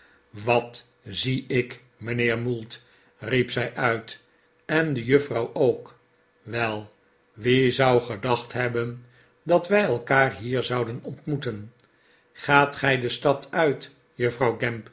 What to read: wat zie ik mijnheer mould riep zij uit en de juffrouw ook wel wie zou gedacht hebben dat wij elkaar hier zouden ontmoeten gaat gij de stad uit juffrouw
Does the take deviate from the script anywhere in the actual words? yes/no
no